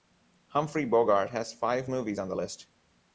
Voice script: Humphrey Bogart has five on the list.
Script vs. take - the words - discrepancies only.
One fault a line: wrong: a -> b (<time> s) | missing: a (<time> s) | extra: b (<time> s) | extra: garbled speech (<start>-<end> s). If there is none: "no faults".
extra: movies (1.9 s)